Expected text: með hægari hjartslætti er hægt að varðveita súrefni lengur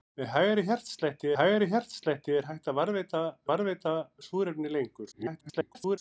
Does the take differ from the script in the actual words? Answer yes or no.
yes